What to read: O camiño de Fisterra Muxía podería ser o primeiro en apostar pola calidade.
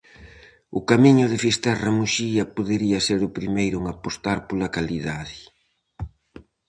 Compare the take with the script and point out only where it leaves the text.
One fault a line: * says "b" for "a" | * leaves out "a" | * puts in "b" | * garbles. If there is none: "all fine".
all fine